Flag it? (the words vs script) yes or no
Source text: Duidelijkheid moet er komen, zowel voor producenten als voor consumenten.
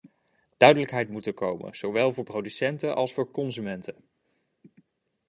no